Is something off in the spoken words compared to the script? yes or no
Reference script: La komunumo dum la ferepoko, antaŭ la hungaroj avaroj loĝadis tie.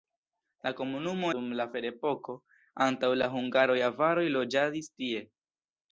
no